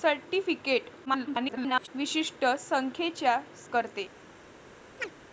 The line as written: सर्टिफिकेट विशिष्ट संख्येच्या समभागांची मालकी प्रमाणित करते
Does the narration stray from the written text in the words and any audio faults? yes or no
yes